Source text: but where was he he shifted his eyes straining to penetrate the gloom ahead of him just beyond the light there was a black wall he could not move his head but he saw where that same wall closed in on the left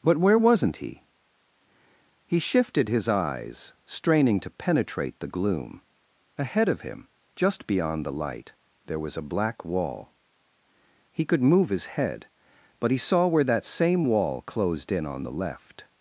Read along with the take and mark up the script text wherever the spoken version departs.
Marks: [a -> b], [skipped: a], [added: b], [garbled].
but where [was -> wasn't] he he shifted his eyes straining to penetrate the gloom ahead of him just beyond the light there was a black wall he could [skipped: not] move his head but he saw where that same wall closed in on the left